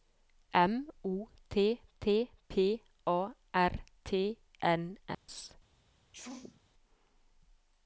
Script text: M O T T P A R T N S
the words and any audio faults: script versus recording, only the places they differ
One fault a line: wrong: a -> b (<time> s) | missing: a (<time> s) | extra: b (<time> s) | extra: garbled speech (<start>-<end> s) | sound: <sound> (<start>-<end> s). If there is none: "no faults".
sound: dropout (5.1-5.3 s)
sound: sneeze (6.1-6.6 s)